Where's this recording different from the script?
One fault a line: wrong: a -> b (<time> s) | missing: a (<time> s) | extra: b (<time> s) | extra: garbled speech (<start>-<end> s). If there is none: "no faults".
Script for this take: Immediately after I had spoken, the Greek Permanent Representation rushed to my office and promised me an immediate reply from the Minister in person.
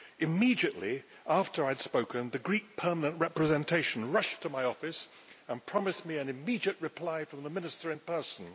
no faults